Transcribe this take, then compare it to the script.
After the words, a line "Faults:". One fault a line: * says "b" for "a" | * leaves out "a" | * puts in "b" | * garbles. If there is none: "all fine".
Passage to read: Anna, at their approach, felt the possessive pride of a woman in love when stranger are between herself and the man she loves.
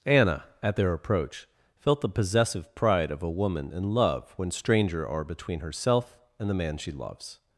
Anna, at their approach, felt the possessive pride of a woman in love when stranger are between herself and the man she loves.
Faults:
all fine